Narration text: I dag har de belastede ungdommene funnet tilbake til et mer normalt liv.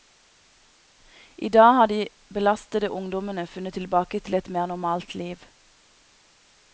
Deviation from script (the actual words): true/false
false